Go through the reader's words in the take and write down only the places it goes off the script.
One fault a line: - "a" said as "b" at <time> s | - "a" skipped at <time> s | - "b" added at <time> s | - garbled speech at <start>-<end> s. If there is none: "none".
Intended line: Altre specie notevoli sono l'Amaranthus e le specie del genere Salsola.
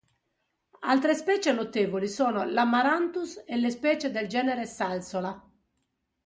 none